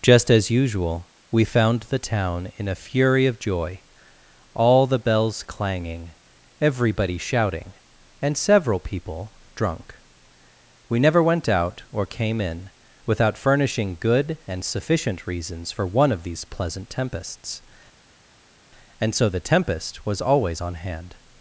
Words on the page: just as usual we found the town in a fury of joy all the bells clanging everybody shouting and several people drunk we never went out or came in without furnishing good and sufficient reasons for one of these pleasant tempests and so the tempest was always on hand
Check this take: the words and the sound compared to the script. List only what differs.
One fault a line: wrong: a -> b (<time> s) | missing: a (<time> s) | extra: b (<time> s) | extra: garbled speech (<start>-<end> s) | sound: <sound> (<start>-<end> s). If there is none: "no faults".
no faults